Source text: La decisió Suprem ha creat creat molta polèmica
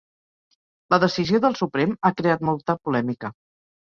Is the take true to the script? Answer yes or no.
no